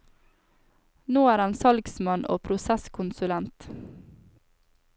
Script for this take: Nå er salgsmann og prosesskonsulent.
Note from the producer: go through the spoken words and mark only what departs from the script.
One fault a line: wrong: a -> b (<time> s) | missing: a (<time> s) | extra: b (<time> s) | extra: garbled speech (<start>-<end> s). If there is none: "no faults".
extra: han (1.4 s)